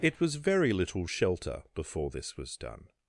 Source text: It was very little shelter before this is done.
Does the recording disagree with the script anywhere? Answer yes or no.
yes